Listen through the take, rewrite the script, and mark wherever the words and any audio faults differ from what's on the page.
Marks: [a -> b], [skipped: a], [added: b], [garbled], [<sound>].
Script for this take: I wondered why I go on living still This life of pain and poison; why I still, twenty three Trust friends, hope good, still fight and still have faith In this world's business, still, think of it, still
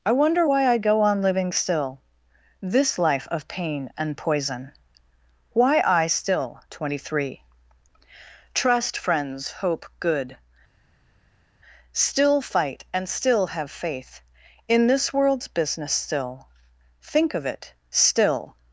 I [wondered -> wonder] why I go on living still This life of pain and poison; why I still, twenty three Trust friends, hope good, still fight and still have faith In this world's business, still, think of it, still